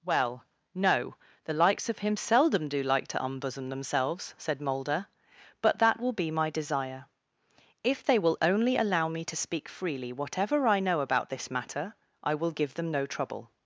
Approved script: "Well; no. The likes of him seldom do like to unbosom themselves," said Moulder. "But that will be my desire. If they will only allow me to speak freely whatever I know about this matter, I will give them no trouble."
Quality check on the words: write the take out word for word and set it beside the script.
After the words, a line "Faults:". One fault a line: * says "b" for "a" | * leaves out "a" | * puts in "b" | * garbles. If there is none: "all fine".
"Well; no. The likes of him seldom do like to unbosom themselves," said Moulder. "But that will be my desire. If they will only allow me to speak freely whatever I know about this matter, I will give them no trouble."
Faults:
all fine